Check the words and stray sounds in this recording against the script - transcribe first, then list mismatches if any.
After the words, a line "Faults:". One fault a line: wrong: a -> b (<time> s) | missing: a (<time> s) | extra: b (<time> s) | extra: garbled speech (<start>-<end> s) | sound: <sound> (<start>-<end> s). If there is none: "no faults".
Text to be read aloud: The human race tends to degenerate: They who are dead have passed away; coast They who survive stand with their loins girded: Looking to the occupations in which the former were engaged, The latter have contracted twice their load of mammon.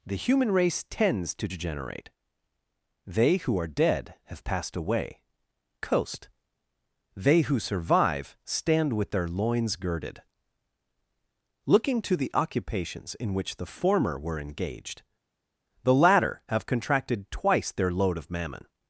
The human race tends to degenerate: They who are dead have passed away; coast They who survive stand with their loins girded: Looking to the occupations in which the former were engaged, The latter have contracted twice their load of mammon.
Faults:
no faults